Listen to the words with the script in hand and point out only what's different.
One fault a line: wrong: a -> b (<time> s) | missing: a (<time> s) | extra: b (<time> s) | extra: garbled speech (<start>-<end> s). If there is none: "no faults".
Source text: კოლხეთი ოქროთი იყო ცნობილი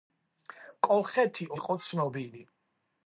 missing: ოქროთი (1.5 s)